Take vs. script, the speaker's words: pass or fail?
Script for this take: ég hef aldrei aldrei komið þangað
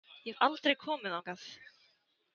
fail